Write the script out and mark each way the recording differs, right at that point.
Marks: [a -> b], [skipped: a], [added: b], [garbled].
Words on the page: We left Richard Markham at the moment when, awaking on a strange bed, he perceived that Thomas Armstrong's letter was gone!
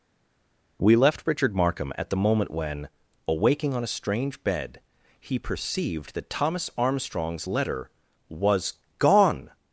We left Richard Markham at the moment when, awaking on a strange bed, he perceived that Thomas Armstrong's letter was gone!